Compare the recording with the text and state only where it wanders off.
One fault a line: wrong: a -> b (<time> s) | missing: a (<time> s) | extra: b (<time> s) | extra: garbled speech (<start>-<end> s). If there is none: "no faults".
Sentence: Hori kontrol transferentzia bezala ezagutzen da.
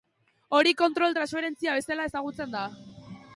no faults